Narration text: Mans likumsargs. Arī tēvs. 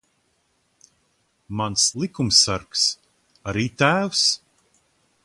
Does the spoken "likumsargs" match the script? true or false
true